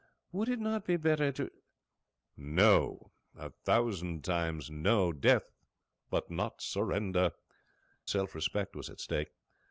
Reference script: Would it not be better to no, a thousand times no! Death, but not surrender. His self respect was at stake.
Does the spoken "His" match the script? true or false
false